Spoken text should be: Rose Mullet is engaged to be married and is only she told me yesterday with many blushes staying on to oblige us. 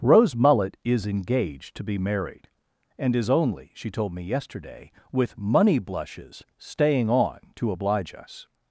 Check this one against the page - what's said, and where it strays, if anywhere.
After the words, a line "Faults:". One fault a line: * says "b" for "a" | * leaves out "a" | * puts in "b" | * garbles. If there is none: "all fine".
Rose Mullet is engaged to be married and is only she told me yesterday with money blushes staying on to oblige us.
Faults:
* says "money" for "many"